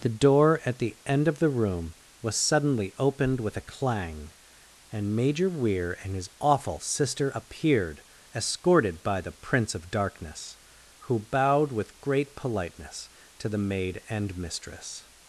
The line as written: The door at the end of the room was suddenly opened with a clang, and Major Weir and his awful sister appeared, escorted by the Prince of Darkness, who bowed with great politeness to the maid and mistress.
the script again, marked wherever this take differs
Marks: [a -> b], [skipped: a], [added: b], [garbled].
The door at the end of the room was suddenly opened with a clang, and Major Weir and his awful sister appeared, escorted by the Prince of Darkness, who bowed with great politeness to the maid and mistress.